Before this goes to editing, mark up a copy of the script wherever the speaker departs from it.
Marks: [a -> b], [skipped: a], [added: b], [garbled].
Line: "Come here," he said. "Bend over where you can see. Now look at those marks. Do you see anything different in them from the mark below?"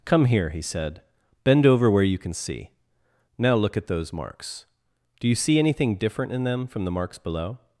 "Come here," he said. "Bend over where you can see. Now look at those marks. Do you see anything different in them from the [mark -> marks] below?"